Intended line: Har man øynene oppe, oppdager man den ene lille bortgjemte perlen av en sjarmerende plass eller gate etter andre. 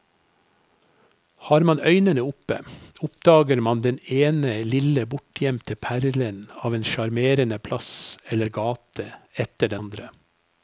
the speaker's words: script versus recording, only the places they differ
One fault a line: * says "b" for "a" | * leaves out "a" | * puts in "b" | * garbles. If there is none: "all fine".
all fine